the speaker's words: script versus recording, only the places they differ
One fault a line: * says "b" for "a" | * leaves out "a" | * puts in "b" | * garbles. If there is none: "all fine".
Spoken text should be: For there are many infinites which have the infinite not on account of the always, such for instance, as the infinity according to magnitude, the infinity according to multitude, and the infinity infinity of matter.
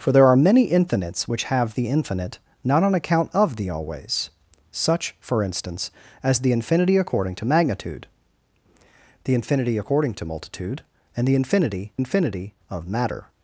all fine